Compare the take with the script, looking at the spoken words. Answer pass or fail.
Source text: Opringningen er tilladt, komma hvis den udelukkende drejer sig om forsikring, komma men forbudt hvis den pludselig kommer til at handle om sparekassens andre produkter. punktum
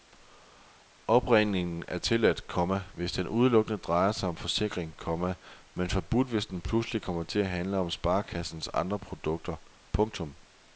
pass